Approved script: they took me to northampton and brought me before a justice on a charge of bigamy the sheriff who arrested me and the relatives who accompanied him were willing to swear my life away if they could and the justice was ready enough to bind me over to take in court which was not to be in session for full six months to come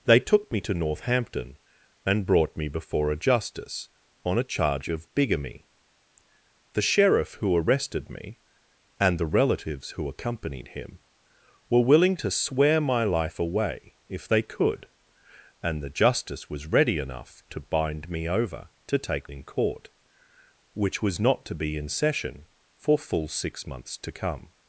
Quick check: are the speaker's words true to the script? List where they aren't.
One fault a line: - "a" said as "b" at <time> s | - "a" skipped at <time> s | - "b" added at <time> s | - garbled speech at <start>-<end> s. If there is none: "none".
none